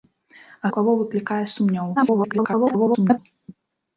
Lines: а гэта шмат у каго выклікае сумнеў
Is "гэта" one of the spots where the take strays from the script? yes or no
yes